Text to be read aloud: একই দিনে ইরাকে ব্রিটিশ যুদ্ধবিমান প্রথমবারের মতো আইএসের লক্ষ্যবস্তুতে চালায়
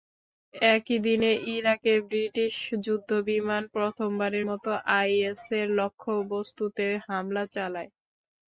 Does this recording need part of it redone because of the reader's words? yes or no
yes